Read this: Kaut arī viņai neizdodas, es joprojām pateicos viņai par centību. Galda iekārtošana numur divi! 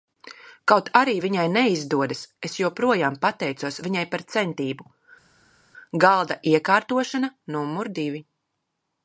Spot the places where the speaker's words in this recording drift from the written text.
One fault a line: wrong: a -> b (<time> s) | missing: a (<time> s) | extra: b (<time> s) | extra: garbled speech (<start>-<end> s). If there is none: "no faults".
no faults